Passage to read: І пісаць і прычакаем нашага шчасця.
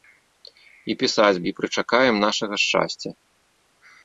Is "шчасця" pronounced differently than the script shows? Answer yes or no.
no